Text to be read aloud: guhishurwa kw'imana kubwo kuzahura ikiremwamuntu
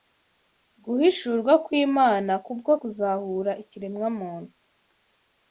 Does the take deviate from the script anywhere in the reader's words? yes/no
no